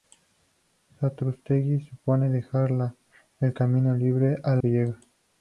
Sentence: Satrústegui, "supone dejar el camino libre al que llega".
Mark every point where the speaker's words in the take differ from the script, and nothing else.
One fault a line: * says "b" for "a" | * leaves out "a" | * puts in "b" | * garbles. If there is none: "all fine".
all fine